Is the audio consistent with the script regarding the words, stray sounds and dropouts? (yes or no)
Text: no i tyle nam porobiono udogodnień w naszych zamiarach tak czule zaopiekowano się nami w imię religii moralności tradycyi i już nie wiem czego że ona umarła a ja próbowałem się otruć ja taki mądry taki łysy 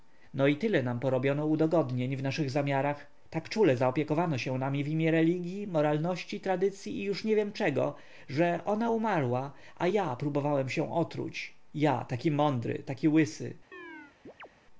no